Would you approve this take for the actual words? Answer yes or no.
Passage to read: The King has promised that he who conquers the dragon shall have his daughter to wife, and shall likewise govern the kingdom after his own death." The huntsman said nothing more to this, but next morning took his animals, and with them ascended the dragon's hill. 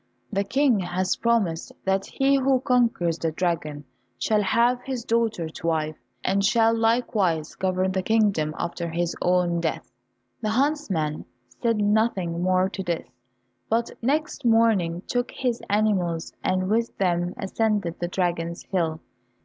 yes